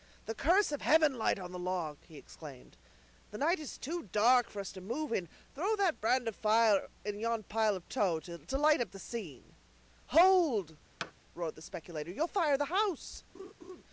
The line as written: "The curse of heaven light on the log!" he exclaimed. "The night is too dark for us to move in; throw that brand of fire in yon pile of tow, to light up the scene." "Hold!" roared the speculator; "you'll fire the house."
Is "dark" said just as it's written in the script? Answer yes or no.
yes